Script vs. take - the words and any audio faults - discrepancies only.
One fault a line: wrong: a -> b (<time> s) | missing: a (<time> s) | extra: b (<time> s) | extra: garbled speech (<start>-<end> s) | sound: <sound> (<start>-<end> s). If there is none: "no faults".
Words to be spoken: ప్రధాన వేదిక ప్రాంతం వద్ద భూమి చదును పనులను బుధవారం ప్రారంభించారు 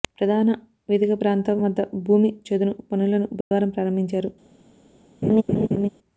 sound: dropout (3.4-3.5 s)
sound: laugh (5.2-5.9 s)